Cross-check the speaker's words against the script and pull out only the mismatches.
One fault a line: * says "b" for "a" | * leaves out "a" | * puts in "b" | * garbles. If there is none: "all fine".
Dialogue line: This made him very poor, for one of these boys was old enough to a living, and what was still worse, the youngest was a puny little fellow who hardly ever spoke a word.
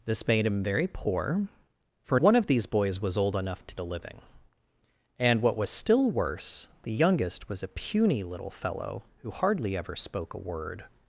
all fine